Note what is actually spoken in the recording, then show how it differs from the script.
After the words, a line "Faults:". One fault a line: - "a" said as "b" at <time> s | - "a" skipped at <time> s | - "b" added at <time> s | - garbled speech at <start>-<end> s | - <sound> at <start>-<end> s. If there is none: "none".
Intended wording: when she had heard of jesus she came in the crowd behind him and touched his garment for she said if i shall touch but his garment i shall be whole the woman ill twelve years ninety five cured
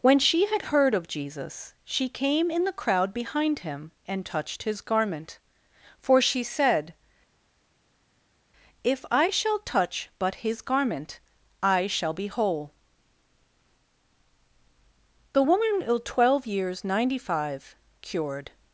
when she had heard of jesus she came in the crowd behind him and touched his garment for she said if i shall touch but his garment i shall be whole the woman ill twelve years ninety five cured
Faults:
none